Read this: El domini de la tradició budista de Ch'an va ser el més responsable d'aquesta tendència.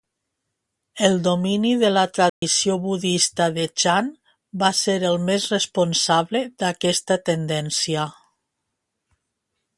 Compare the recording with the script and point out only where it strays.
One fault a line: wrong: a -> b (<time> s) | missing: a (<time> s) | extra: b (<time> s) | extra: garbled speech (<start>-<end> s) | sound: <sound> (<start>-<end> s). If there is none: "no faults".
sound: dropout (2.3-2.4 s)